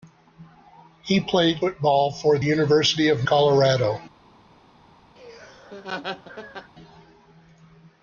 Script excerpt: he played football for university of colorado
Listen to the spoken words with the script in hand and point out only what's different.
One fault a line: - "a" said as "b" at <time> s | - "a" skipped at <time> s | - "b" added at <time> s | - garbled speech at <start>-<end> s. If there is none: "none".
none